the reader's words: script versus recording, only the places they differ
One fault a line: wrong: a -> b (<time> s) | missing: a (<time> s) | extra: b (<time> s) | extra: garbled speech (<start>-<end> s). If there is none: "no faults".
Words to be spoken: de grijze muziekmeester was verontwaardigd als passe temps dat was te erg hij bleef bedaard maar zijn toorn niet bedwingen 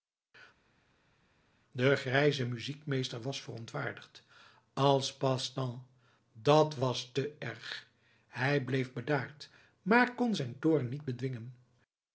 extra: kon (10.1 s)